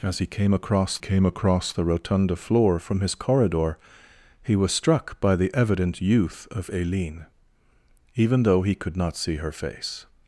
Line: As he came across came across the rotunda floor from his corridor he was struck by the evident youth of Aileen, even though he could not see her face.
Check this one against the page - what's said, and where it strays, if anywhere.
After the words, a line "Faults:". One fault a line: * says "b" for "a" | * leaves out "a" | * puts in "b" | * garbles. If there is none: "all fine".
As he came across came across the rotunda floor from his corridor he was struck by the evident youth of Aileen, even though he could not see her face.
Faults:
all fine